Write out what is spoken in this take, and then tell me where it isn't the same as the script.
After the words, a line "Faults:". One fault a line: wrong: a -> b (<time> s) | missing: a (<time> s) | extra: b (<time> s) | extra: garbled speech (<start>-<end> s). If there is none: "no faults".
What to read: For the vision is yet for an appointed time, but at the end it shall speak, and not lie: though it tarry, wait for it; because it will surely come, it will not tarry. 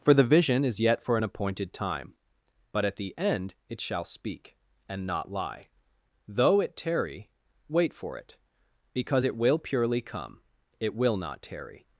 For the vision is yet for an appointed time, but at the end it shall speak, and not lie: though it tarry, wait for it; because it will purely come, it will not tarry.
Faults:
wrong: surely -> purely (9.6 s)